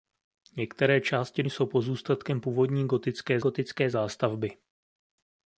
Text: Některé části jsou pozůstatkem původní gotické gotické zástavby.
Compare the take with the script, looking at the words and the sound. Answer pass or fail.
pass